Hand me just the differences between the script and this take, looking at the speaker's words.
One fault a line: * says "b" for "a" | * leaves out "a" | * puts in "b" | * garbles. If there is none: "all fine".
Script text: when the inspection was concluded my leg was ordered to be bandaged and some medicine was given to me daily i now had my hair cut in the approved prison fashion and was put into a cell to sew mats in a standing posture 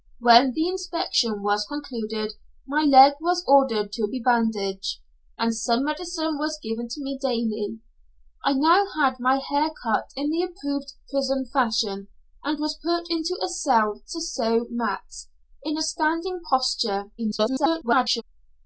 * garbles